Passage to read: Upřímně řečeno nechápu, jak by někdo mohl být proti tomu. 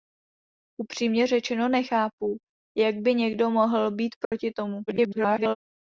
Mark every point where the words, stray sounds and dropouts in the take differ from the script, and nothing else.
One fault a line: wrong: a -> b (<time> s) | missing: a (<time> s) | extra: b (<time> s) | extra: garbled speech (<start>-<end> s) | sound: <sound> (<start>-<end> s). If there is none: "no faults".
sound: dropout (4.2-4.3 s)
extra: garbled speech (4.9-5.6 s)